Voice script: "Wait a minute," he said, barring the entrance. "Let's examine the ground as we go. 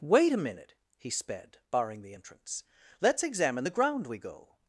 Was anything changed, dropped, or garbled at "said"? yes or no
yes